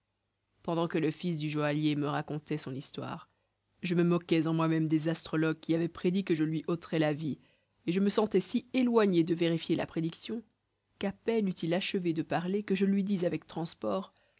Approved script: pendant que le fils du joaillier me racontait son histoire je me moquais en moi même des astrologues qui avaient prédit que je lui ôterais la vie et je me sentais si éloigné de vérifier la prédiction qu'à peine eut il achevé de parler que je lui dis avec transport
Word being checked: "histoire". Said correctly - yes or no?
yes